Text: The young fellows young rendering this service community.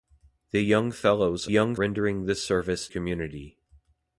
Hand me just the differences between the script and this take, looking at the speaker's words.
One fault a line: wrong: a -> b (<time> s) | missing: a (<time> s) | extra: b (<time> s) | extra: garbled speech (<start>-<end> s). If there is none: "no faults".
no faults